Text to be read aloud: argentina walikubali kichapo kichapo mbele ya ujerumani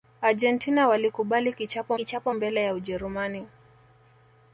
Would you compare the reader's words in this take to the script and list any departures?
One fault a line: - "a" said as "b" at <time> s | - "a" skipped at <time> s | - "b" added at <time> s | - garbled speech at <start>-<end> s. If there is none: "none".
none